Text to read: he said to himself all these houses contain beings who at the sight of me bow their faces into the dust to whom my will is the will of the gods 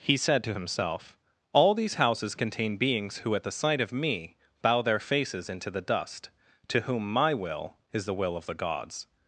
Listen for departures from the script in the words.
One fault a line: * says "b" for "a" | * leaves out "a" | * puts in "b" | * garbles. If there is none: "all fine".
all fine